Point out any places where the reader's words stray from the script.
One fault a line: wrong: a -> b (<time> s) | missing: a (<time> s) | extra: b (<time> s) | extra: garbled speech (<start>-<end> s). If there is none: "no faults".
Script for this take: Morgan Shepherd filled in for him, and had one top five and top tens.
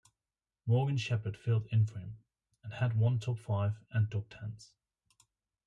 no faults